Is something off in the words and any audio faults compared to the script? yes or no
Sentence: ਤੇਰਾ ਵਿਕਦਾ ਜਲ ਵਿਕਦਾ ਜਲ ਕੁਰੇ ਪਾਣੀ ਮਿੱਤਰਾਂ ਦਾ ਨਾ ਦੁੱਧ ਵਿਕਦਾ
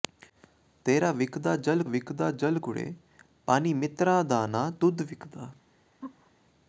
yes